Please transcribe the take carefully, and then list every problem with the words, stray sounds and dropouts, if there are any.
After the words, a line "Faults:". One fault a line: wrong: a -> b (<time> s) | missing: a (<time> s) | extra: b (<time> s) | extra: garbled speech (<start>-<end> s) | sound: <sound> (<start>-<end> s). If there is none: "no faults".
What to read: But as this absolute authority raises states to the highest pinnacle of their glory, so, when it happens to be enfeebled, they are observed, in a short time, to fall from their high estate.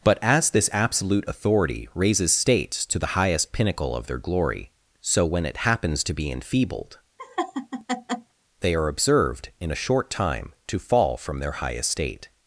But as this absolute authority raises states to the highest pinnacle of their glory, so, when it happens to be enfeebled, they are observed, in a short time, to fall from their high estate.
Faults:
sound: laugh (7.2-8.3 s)